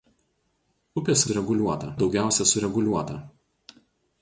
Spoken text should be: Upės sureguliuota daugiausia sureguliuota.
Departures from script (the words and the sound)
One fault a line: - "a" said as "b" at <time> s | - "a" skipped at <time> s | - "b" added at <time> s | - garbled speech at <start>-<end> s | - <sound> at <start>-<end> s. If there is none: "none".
none